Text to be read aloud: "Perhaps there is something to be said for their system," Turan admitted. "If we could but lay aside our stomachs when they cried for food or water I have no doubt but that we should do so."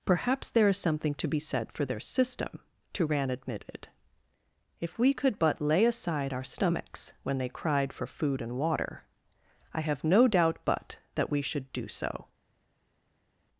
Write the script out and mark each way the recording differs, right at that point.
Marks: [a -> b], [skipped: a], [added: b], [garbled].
"Perhaps there is something to be said for their system," Turan admitted. "If we could but lay aside our stomachs when they cried for food [or -> and] water I have no doubt but that we should do so."